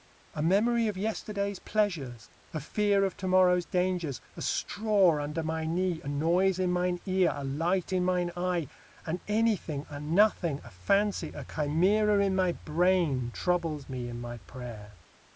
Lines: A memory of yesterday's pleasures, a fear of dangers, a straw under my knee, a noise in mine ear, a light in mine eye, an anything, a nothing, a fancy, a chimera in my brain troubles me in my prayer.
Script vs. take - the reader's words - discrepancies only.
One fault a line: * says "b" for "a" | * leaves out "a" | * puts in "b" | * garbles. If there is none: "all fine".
* puts in "to morrow's"